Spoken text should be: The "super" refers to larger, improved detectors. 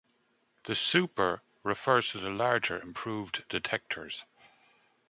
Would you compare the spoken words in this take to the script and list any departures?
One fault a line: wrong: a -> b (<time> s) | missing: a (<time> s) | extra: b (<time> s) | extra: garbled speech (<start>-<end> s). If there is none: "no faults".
extra: the (2.2 s)